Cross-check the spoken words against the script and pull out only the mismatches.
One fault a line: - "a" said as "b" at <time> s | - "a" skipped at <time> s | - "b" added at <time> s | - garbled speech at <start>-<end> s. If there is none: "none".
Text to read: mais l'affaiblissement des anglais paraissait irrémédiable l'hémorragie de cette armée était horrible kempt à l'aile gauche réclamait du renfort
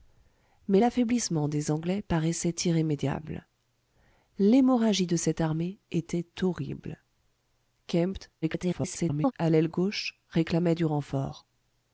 - garbled speech at 8.4-9.3 s